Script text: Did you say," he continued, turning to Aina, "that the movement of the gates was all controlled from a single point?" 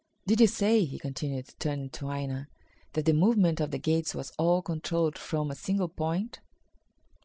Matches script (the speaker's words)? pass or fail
pass